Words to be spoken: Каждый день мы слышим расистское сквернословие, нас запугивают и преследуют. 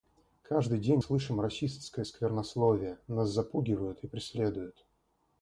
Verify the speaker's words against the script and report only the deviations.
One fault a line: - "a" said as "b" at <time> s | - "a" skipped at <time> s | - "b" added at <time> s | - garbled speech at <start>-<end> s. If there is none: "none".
- "мы" skipped at 1.0 s